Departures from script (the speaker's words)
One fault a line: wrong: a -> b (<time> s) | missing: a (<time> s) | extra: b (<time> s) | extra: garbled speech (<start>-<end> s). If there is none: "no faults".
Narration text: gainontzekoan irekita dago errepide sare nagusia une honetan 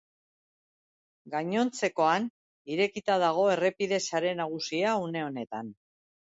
no faults